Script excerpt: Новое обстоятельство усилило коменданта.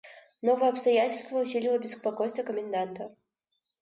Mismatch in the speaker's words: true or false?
true